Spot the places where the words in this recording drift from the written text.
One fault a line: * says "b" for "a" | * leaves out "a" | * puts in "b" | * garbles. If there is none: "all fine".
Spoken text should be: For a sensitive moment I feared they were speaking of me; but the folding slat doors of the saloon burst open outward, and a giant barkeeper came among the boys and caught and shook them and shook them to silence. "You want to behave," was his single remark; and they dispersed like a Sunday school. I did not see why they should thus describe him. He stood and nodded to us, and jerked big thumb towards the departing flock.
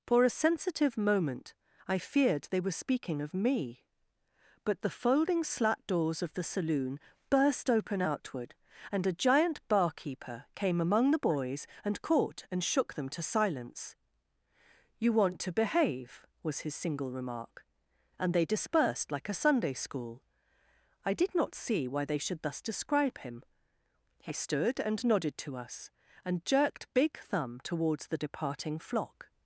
* leaves out "and shook them"